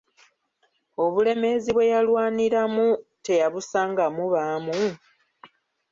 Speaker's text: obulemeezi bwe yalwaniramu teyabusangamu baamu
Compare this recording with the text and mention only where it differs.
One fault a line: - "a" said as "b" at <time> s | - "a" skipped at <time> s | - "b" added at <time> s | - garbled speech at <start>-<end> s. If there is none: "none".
none